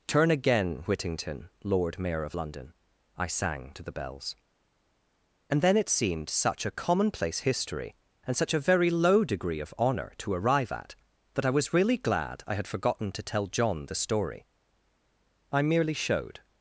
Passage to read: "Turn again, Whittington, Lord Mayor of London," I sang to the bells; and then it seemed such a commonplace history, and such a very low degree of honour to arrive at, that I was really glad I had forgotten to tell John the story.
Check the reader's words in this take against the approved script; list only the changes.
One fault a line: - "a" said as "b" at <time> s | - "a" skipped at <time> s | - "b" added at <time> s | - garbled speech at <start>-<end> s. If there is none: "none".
- "I merely showed" added at 15.5 s